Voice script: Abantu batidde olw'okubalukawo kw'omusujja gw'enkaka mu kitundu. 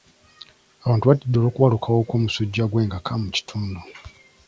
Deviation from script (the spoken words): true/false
false